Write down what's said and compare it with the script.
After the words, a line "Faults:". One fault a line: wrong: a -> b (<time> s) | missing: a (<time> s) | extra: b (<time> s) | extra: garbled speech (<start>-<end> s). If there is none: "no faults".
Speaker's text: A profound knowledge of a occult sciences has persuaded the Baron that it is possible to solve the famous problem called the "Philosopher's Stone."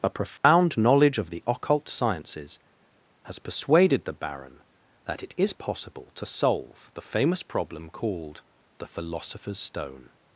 A profound knowledge of the occult sciences has persuaded the Baron that it is possible to solve the famous problem called the "Philosopher's Stone."
Faults:
wrong: a -> the (1.3 s)